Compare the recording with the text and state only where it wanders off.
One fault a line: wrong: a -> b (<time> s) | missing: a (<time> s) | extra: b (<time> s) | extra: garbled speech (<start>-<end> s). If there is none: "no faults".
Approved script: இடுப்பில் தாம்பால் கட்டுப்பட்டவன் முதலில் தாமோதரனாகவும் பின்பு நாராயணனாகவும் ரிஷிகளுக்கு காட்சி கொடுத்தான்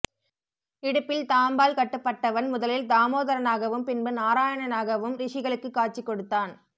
no faults